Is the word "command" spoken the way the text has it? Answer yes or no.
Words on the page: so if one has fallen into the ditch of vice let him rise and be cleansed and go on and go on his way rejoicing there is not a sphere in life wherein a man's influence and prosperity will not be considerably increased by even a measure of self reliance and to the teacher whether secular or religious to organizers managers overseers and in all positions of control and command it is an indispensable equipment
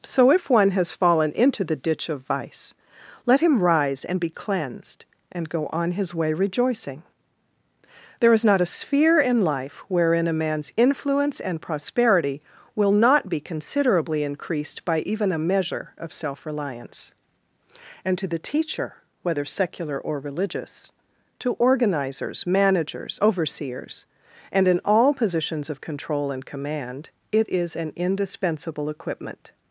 yes